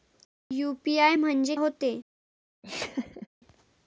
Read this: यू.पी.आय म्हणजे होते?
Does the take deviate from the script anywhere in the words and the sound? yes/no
yes